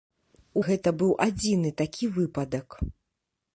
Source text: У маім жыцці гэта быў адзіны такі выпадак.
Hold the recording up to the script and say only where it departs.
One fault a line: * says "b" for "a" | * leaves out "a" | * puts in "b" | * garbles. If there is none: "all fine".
* leaves out "маім жыцці"